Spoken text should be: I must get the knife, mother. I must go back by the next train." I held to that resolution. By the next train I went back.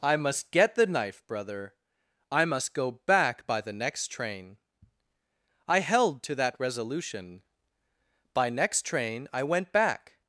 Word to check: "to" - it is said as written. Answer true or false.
true